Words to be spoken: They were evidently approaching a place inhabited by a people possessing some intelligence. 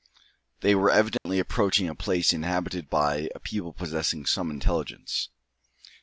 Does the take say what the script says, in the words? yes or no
yes